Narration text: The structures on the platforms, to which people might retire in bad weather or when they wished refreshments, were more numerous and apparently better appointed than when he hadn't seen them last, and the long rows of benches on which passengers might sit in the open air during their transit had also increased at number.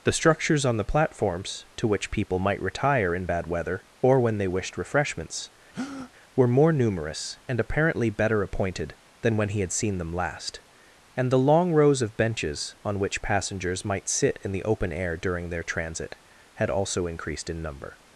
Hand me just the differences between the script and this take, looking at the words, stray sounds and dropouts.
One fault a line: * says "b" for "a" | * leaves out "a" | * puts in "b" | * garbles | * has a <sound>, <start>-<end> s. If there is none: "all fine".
* has a breath, 5.7-6.1 s
* says "had" for "hadn't"
* says "in" for "at"